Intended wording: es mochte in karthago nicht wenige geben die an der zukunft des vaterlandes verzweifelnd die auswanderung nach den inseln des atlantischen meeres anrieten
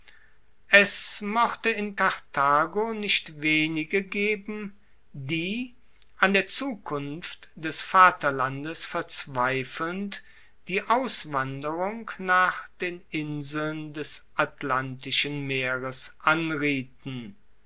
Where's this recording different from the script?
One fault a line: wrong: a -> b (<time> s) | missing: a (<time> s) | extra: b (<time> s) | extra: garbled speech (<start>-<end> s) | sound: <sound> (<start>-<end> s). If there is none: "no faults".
no faults